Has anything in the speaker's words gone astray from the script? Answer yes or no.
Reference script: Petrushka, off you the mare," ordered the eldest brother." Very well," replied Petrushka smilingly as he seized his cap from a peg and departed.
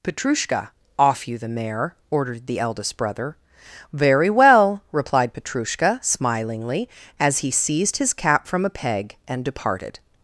no